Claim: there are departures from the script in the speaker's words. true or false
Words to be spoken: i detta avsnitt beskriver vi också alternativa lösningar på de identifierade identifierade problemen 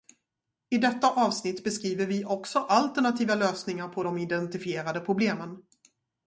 true